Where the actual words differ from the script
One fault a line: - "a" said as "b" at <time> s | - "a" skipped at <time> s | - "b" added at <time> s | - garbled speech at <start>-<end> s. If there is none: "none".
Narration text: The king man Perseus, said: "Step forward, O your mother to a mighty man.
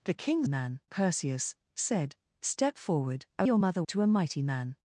none